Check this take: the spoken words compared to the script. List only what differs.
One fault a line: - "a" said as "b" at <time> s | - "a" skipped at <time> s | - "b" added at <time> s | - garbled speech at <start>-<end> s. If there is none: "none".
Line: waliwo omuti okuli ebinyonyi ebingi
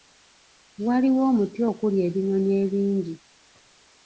none